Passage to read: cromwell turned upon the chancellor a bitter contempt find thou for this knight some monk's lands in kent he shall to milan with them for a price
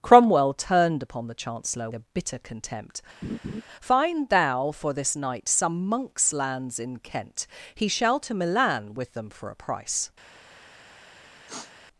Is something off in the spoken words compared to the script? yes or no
no